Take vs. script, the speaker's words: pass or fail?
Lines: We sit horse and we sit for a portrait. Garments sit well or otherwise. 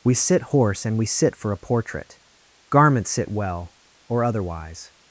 pass